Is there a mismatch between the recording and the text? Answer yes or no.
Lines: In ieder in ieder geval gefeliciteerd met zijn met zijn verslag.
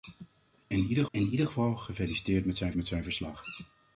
no